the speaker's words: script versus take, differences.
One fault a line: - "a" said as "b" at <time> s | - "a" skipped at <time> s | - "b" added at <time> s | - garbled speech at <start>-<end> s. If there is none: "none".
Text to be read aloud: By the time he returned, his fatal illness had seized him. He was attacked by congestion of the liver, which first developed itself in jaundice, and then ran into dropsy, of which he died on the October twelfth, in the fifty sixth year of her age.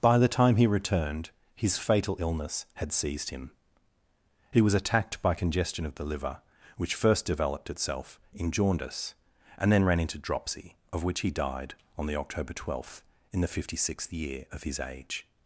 - "her" said as "his" at 14.6 s